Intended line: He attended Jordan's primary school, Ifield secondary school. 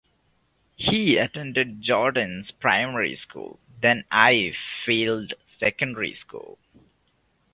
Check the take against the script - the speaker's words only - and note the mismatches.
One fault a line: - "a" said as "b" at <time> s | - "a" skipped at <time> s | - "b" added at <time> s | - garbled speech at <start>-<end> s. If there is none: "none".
- "then" added at 3.8 s